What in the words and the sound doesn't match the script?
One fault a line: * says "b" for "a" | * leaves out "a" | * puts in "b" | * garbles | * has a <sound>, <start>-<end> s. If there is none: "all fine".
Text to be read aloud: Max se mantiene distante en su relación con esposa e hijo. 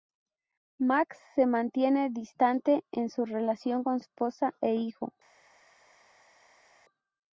all fine